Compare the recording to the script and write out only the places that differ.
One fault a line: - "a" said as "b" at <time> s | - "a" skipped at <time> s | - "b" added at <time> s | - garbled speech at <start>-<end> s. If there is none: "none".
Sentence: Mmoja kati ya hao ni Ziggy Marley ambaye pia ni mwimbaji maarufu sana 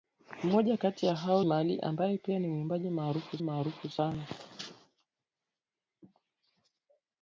- "ni Ziggy" skipped at 1.4 s
- "maarufu" added at 3.4 s